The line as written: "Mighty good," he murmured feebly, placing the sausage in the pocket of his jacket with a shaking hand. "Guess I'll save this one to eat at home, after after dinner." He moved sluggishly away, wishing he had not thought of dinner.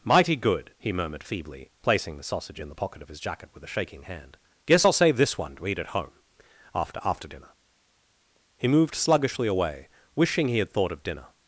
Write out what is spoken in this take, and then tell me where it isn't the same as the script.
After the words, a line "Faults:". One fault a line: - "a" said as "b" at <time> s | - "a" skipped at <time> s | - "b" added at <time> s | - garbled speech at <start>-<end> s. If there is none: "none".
"Mighty good," he murmured feebly, placing the sausage in the pocket of his jacket with a shaking hand. "Guess I'll save this one to eat at home, after after dinner." He moved sluggishly away, wishing he had thought of dinner.
Faults:
- "not" skipped at 10.7 s